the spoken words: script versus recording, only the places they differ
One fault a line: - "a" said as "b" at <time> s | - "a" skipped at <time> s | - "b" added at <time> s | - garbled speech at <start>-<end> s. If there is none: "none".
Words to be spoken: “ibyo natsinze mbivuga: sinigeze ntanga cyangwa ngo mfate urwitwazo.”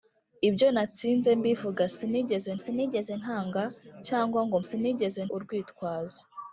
- "sinigeze" added at 2.6 s
- "mfate" said as "sinigeze" at 4.7 s